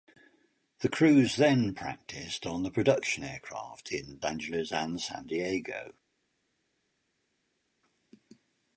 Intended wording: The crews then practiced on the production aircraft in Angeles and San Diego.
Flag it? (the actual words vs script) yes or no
no